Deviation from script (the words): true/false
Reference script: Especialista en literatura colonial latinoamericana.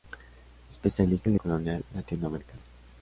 true